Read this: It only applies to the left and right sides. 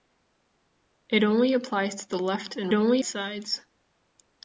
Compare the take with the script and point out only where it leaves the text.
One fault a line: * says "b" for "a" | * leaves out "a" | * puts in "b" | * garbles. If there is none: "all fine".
* says "only" for "right"